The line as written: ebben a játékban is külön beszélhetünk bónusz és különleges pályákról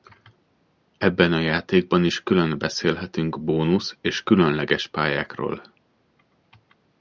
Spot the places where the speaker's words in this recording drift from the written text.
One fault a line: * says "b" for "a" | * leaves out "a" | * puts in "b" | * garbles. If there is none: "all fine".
all fine